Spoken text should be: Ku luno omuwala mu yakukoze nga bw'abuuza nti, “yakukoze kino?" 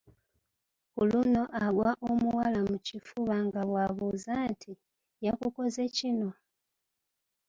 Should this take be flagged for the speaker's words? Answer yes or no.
yes